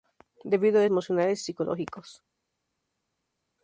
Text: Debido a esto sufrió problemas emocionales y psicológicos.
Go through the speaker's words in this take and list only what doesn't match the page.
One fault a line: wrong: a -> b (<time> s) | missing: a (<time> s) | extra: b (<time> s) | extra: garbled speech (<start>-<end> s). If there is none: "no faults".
missing: esto sufrió problemas (0.8 s)